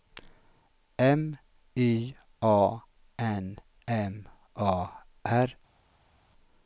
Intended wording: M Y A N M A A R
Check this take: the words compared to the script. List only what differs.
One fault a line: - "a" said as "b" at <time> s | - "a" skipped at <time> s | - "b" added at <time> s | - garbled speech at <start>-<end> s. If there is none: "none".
- "A" skipped at 4.9 s